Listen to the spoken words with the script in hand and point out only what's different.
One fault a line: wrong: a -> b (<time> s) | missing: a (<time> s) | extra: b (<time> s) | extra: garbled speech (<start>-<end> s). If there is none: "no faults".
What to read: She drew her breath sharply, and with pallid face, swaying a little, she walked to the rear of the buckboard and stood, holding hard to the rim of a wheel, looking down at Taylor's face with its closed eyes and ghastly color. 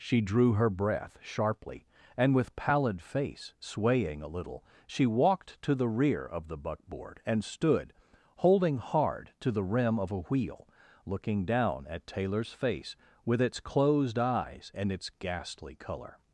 extra: its (14.9 s)